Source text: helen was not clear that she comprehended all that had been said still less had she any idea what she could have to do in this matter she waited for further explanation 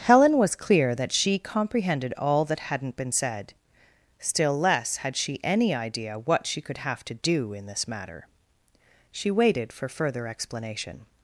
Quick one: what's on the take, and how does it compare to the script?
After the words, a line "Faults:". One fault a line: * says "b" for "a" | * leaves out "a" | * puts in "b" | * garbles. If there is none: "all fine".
helen was clear that she comprehended all that hadn't been said still less had she any idea what she could have to do in this matter she waited for further explanation
Faults:
* leaves out "not"
* says "hadn't" for "had"